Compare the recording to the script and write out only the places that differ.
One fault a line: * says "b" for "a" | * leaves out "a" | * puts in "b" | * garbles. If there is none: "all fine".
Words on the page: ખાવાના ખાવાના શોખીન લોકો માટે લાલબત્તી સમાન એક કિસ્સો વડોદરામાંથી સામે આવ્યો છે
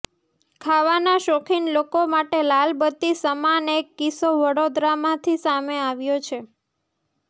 * leaves out "ખાવાના"